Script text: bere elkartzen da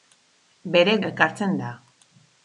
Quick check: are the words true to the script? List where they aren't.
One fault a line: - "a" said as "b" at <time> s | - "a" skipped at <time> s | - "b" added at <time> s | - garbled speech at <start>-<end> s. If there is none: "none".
none